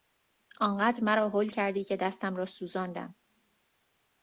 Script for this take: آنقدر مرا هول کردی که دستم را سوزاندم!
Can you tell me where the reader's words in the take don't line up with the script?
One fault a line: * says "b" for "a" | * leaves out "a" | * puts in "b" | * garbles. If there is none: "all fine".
all fine